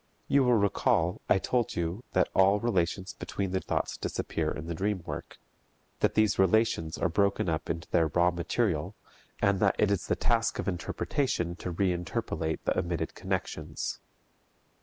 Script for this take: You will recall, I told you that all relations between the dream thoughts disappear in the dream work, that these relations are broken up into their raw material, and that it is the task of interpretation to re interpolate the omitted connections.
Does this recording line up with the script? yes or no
no